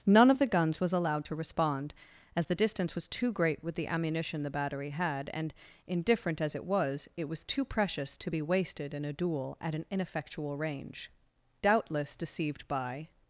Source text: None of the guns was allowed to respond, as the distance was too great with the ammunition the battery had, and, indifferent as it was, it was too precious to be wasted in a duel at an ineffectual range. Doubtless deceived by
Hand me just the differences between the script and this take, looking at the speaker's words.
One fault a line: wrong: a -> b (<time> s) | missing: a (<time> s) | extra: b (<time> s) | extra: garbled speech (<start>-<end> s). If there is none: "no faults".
no faults